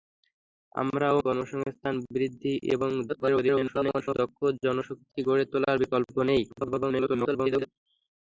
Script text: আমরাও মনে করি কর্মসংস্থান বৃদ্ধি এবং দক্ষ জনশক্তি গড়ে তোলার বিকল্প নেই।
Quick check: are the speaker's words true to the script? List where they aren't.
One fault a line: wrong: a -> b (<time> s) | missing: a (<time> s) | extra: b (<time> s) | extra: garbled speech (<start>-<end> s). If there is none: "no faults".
missing: মনে করি (1.2 s)
extra: garbled speech (3.1-4.2 s)
extra: garbled speech (6.5-7.7 s)